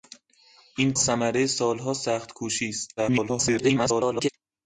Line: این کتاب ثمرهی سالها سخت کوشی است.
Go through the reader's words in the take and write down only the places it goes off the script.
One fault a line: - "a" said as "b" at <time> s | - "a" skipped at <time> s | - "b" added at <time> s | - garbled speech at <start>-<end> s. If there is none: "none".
- "کتاب" skipped at 0.9 s
- garbled speech at 3.0-4.3 s